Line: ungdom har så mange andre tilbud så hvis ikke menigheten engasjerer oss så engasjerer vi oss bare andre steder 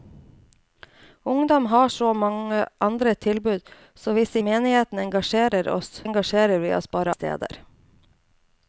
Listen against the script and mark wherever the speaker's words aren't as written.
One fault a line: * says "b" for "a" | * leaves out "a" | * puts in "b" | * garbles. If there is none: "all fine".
* leaves out "ikke"
* leaves out "så"
* leaves out "andre"